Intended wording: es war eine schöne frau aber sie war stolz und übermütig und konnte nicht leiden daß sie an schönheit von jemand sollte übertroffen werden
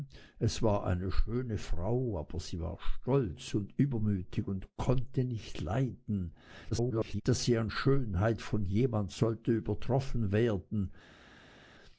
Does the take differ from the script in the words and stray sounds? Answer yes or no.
yes